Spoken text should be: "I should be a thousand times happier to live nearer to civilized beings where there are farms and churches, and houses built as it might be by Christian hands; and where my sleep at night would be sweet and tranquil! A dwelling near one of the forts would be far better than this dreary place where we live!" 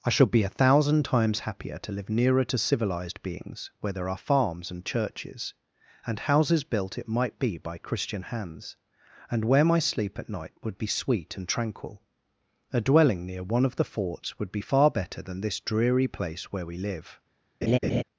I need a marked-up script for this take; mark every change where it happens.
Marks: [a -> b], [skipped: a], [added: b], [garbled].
"I should be a thousand times happier to live nearer to civilized beings where there are farms and churches, and houses built [skipped: as] it might be by Christian hands; and where my sleep at night would be sweet and tranquil! A dwelling near one of the forts would be far better than this dreary place where we live!"